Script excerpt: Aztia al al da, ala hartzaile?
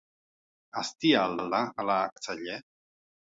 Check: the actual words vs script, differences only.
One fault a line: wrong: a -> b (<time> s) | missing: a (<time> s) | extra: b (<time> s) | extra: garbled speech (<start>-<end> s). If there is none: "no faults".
no faults